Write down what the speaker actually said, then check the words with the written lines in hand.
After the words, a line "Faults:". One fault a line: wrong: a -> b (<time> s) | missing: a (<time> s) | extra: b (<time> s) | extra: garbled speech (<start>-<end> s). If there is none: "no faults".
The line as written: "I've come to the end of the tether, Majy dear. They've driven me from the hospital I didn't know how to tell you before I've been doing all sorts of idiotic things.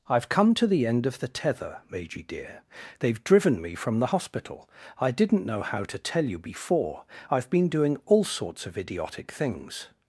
"I've come to the end of the tether, Majy dear. They've driven me from the hospital I didn't know how to tell you before I've been doing all sorts of idiotic things.
Faults:
no faults